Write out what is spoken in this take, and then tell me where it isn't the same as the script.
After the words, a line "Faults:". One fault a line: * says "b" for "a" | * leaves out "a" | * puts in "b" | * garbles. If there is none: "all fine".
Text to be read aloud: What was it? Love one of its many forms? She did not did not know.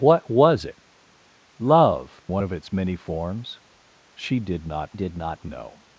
What was it? Love one of its many forms? She did not did not know.
Faults:
all fine